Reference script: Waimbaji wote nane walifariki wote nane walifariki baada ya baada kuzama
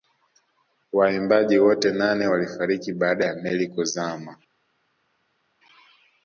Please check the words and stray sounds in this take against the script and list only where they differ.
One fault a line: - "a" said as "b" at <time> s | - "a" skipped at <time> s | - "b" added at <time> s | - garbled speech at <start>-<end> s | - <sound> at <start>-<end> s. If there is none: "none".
- "wote nane walifariki" skipped at 2.9 s
- "baada" said as "meli" at 3.3 s